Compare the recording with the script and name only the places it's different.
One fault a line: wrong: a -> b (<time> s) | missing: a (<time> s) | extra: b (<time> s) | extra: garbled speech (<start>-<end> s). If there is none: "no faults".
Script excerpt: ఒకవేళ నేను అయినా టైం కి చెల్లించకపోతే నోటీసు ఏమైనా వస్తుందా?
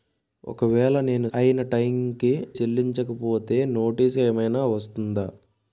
no faults